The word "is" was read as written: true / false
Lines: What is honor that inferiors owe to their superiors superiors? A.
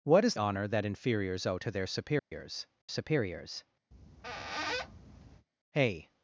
true